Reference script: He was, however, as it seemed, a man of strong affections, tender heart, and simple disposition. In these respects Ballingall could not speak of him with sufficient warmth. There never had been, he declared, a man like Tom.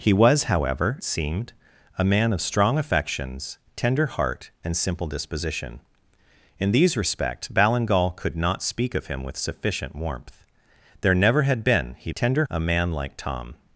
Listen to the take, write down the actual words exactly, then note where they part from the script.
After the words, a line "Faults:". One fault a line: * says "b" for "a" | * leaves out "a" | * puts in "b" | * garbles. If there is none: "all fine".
He was, however, seemed, a man of strong affections, tender heart, and simple disposition. In these respects Ballingall could not speak of him with sufficient warmth. There never had been, he tender, a man like Tom.
Faults:
* leaves out "as it"
* says "tender" for "declared"